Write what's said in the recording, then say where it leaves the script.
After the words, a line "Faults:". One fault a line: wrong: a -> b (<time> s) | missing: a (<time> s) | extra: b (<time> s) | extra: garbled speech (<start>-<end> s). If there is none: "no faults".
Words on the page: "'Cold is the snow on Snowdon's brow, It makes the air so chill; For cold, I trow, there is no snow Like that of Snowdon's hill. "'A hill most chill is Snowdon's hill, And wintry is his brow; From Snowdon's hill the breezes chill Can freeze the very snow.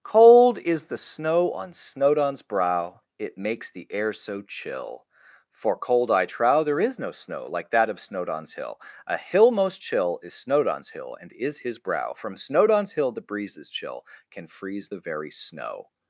"'Cold is the snow on Snowdon's brow, It makes the air so chill; For cold, I trow, there is no snow Like that of Snowdon's hill. "'A hill most chill is Snowdon's hill, And is his brow; From Snowdon's hill the breezes chill Can freeze the very snow.
Faults:
missing: wintry (11.3 s)